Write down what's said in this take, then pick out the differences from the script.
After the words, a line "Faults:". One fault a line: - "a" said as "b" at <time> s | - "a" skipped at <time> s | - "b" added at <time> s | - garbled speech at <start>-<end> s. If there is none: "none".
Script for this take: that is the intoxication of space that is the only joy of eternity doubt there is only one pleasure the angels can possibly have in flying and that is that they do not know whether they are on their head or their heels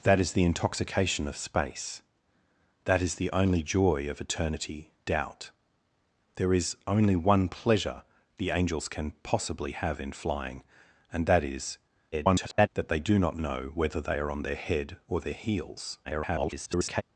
that is the intoxication of space that is the only joy of eternity doubt there is only one pleasure the angels can possibly have in flying and that is [garbled] that they do not know whether they are on their head or their heels [garbled]
Faults:
- garbled speech at 12.1-12.7 s
- garbled speech at 16.0-17.0 s